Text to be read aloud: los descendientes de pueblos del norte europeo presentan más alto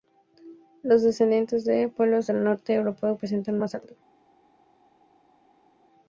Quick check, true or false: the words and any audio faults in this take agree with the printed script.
true